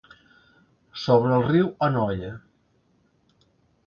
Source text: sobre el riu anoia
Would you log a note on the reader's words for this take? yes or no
no